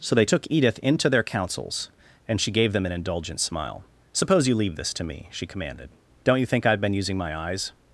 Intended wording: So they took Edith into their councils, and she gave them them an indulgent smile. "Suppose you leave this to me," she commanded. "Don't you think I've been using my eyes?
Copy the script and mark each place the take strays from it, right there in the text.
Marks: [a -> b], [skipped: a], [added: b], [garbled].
So they took Edith into their councils, and she gave them [skipped: them] an indulgent smile. "Suppose you leave this to me," she commanded. "Don't you think I've been using my eyes?